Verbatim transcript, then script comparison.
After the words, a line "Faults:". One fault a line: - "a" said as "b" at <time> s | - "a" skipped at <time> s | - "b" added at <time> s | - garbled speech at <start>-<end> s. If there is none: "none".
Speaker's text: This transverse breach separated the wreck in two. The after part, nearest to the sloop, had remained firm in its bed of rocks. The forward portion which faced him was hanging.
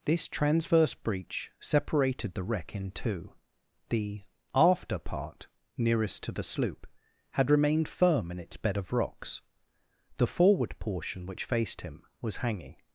This transverse breach separated the wreck in two. The after part, nearest to the sloop, had remained firm in its bed of rocks. The forward portion which faced him was hanging.
Faults:
none